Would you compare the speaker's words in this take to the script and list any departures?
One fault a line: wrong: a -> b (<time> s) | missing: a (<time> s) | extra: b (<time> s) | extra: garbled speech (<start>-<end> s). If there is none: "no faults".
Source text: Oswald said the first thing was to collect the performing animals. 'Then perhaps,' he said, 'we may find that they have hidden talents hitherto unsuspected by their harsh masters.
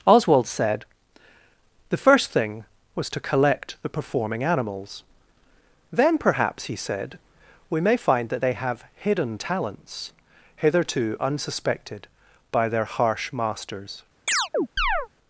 no faults